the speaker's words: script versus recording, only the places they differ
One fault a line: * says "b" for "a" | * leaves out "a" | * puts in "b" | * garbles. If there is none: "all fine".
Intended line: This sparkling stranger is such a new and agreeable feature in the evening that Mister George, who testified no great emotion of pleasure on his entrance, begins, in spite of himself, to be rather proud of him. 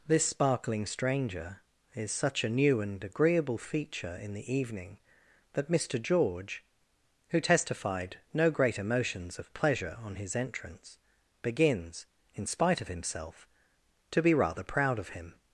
* says "emotions" for "emotion"